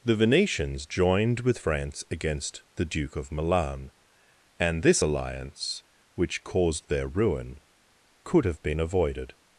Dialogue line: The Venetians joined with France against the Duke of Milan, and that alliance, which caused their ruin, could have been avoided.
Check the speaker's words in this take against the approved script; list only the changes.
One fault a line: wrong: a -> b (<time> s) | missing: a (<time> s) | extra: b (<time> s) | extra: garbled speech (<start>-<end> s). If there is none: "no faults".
wrong: that -> this (4.8 s)